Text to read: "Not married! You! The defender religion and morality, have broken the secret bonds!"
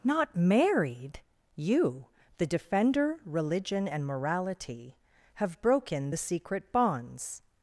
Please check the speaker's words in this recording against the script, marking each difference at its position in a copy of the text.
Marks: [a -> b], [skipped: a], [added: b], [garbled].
"Not married! You! The defender religion and morality, have broken the secret bonds!"